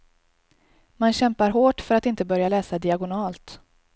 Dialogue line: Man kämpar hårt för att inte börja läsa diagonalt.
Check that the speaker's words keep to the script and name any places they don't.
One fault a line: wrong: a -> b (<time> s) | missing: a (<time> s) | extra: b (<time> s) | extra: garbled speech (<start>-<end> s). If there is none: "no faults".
no faults